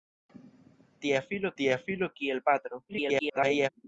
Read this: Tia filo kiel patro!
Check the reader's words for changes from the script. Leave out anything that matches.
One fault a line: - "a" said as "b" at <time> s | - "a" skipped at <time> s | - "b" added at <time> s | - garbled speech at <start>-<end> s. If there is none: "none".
- "tia filo" added at 1.6 s
- garbled speech at 2.9-3.7 s